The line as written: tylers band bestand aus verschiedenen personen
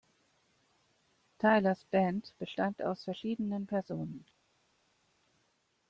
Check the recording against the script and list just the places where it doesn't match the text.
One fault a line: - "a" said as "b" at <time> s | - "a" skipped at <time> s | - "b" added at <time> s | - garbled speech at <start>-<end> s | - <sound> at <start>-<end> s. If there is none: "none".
none